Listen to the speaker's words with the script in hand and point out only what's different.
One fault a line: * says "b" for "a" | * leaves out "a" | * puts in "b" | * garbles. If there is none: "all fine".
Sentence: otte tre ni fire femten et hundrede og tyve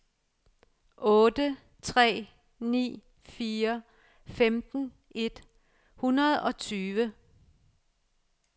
all fine